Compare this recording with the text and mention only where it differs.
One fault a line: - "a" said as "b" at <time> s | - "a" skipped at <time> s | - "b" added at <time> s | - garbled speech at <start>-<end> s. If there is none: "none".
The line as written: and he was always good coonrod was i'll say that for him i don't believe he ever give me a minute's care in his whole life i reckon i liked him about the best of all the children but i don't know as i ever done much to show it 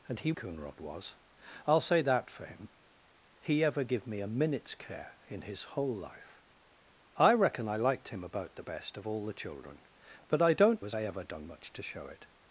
- "was always good" skipped at 0.3 s
- "i don't believe" skipped at 2.7 s
- "know" skipped at 10.9 s